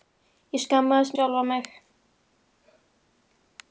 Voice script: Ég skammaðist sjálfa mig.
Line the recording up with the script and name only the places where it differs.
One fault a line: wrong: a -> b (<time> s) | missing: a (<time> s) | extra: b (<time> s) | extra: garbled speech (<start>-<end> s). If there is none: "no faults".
no faults